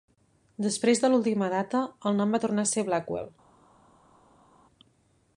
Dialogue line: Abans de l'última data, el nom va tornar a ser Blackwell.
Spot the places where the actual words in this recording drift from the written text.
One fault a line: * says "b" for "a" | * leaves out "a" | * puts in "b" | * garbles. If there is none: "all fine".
* says "Després" for "Abans"